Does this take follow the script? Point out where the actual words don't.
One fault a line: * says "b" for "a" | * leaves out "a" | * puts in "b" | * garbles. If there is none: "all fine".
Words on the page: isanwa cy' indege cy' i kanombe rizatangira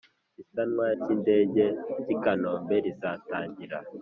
all fine